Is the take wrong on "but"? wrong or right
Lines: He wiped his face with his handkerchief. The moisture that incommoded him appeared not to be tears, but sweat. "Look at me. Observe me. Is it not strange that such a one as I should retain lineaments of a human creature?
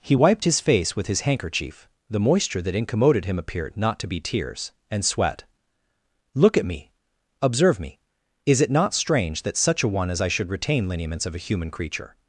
wrong